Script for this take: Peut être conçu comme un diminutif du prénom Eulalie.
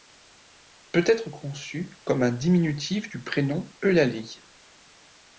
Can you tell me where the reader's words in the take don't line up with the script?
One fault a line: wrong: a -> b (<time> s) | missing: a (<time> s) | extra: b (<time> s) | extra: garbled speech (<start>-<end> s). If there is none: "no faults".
no faults